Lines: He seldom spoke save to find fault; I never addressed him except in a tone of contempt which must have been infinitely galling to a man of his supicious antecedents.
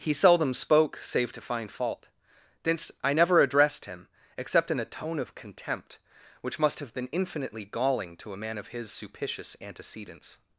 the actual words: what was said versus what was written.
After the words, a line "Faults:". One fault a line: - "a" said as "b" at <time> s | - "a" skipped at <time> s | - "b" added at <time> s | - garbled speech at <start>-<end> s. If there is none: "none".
He seldom spoke save to find fault; thence I never addressed him except in a tone of contempt which must have been infinitely galling to a man of his supicious antecedents.
Faults:
- "thence" added at 2.6 s